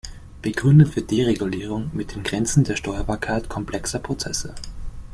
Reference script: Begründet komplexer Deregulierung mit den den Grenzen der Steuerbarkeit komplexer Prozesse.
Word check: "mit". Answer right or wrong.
right